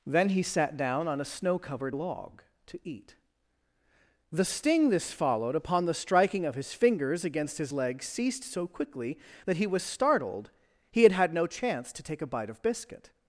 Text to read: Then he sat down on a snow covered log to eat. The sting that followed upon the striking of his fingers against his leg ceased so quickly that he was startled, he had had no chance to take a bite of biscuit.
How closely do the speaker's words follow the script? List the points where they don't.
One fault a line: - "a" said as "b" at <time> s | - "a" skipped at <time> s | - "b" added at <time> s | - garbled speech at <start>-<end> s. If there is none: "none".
- "that" said as "this" at 4.9 s